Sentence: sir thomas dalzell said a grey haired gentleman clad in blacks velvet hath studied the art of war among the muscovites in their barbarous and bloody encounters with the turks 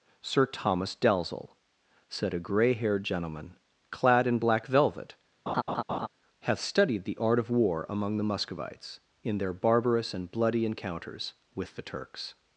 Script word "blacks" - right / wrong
wrong